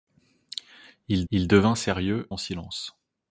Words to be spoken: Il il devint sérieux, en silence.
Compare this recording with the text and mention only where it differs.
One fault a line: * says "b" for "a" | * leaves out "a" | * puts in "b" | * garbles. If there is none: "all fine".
all fine